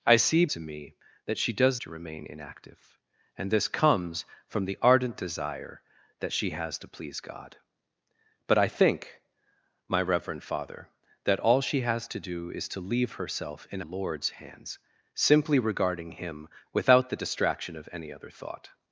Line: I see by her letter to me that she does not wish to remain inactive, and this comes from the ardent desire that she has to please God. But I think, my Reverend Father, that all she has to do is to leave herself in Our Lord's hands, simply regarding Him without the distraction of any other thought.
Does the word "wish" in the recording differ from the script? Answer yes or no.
yes